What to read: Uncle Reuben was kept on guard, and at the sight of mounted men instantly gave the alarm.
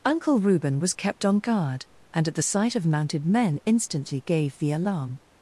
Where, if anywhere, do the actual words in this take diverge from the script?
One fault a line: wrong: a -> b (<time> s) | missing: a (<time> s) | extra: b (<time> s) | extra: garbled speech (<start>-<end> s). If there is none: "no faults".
no faults